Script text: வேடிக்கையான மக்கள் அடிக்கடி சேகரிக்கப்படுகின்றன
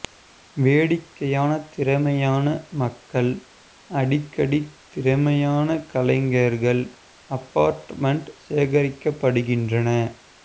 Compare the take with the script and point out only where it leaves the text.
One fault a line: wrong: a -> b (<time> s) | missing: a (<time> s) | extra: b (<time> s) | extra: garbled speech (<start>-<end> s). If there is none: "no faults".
extra: திறமையான (1.7 s)
extra: திறமையான கலைஞர்கள் அபார்ட்மெண்ட் (4.9 s)